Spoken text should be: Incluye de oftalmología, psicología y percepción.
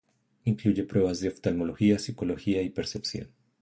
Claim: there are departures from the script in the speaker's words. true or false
true